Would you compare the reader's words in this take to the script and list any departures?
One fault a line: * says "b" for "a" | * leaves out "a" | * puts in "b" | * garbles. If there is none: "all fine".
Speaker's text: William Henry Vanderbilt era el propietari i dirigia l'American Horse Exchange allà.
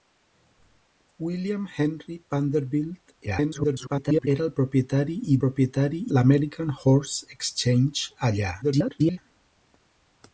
* garbles
* says "propietari" for "dirigia"
* garbles